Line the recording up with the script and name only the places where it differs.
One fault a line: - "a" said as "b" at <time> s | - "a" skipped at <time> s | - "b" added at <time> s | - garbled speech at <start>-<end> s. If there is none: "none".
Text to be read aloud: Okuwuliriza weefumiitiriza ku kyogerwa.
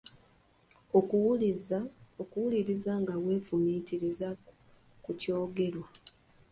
- "nga" added at 3.0 s